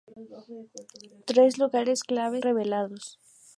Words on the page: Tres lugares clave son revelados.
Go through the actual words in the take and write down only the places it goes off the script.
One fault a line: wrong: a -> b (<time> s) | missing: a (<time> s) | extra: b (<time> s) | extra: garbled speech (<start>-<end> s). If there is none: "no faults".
missing: son (2.4 s)